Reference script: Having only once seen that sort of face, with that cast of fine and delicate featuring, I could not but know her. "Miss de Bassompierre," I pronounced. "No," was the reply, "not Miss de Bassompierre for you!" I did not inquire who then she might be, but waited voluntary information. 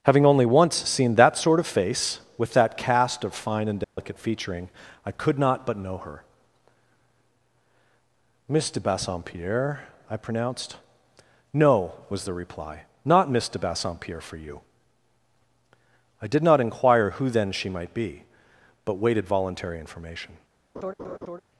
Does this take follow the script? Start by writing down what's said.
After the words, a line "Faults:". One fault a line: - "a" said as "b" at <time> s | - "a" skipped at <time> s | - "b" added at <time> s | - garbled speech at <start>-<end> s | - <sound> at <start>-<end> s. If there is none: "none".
Having only once seen that sort of face, with that cast of fine and delicate featuring, I could not but know her. "Miss de Bassompierre," I pronounced. "No," was the reply, "not Miss de Bassompierre for you!" I did not inquire who then she might be, but waited voluntary information.
Faults:
- dropout at 3.8-4.0 s
- laugh at 20.8-21.4 s